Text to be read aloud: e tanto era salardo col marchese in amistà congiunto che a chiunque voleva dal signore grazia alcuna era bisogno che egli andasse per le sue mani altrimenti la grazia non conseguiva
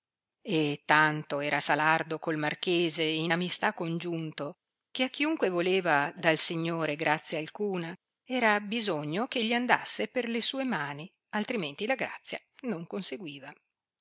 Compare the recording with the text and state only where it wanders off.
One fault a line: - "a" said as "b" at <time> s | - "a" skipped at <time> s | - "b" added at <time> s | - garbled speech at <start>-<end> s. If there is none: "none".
none